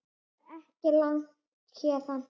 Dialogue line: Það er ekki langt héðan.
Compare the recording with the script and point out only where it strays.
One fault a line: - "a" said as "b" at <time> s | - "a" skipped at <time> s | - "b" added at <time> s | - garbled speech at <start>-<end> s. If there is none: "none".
none